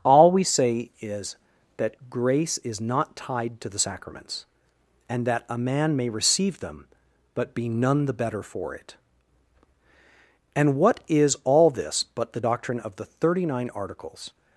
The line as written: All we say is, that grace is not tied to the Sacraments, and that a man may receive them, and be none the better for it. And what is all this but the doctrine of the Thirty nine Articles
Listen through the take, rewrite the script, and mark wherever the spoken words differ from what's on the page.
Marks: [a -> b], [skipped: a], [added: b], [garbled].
All we say is, that grace is not tied to the Sacraments, and that a man may receive them, [and -> but] be none the better for it. And what is all this but the doctrine of the Thirty nine Articles